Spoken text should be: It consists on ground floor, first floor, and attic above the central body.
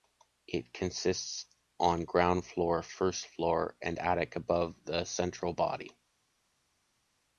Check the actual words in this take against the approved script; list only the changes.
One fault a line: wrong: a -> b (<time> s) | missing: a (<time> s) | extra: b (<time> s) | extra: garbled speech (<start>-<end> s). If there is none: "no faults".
no faults